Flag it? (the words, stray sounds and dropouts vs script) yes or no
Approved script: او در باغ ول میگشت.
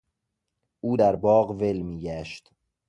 no